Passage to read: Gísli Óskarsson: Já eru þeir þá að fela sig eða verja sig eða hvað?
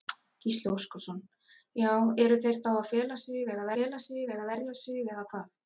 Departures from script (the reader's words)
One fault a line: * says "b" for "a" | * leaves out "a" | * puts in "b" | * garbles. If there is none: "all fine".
* puts in "fela sig eða"